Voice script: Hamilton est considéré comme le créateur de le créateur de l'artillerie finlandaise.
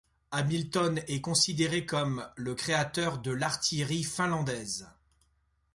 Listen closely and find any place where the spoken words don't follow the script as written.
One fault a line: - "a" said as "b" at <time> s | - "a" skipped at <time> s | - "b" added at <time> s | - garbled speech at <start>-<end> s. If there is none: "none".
- "le créateur de" skipped at 3.3 s